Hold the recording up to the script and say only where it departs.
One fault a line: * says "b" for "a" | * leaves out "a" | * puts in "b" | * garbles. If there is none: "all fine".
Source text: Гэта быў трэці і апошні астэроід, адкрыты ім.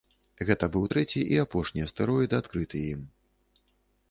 all fine